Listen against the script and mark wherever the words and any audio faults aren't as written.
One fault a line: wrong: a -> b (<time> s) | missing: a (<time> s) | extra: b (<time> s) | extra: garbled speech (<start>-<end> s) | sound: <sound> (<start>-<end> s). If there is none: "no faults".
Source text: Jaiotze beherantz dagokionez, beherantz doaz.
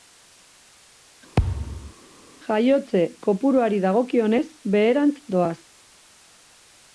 sound: thud (1.4-1.9 s)
wrong: beherantz -> kopuruari (3.3 s)